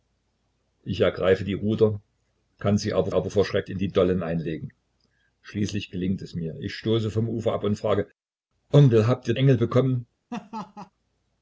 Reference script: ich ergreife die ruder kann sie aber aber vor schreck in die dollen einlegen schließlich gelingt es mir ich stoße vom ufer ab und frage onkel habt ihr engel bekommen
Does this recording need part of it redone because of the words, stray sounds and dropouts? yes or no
yes